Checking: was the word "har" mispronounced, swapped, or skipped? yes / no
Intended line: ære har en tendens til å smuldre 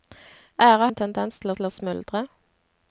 yes